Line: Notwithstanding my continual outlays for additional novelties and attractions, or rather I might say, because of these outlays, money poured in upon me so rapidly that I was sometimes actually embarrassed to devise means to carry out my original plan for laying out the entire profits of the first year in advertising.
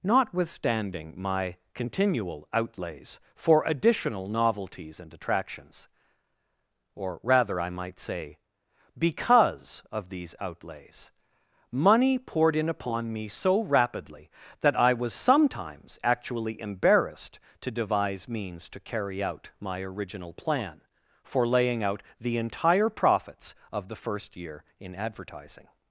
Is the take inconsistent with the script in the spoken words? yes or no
no